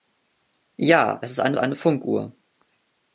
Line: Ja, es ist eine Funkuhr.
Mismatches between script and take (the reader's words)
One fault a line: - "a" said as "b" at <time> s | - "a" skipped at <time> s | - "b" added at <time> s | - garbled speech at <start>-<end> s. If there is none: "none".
- "eine" added at 1.6 s